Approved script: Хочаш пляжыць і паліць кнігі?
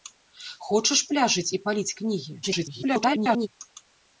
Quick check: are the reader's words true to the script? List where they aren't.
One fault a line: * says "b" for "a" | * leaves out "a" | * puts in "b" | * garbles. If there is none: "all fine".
* garbles